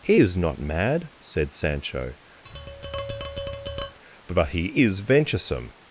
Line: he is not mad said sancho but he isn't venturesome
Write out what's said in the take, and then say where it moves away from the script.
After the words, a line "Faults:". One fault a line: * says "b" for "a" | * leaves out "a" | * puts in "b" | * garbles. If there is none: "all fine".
he is not mad said sancho but he is venturesome
Faults:
* says "is" for "isn't"